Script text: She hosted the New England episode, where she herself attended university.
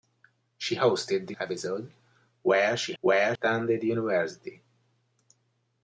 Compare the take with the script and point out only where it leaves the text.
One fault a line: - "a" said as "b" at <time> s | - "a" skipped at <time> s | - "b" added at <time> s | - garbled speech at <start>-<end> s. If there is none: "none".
- "New England" skipped at 1.4 s
- "herself" said as "where" at 3.0 s